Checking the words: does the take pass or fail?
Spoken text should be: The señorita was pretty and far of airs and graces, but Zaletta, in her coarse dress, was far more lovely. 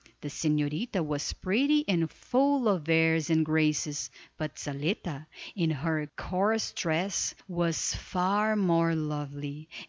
fail